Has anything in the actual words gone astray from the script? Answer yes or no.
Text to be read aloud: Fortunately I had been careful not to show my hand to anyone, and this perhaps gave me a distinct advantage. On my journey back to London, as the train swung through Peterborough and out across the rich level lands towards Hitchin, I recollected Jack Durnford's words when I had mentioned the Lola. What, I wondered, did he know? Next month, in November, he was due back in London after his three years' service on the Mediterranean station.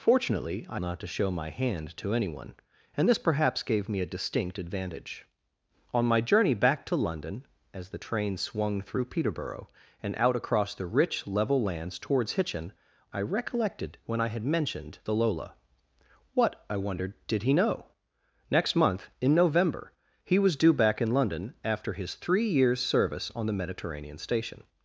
yes